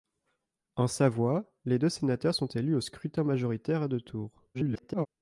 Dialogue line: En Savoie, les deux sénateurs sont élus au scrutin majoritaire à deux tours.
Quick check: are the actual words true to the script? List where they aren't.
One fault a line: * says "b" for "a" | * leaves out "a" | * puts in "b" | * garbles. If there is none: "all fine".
* garbles